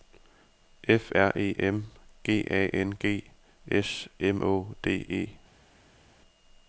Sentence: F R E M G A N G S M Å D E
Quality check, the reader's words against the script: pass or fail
pass